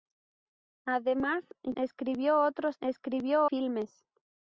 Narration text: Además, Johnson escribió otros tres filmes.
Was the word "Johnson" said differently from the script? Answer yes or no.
yes